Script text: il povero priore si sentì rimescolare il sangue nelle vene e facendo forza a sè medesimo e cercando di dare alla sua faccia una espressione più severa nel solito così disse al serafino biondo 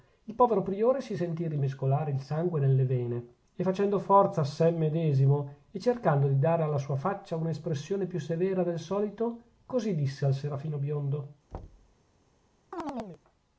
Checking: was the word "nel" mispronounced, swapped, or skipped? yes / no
yes